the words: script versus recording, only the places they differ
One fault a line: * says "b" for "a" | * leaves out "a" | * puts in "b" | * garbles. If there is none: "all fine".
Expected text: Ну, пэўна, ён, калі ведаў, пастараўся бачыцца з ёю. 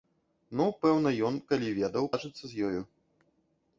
* leaves out "пастараўся"